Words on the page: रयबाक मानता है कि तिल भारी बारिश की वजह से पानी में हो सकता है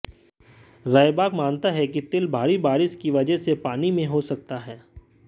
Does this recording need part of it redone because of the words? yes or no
no